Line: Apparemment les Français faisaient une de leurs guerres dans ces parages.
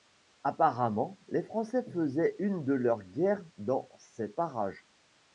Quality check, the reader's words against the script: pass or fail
pass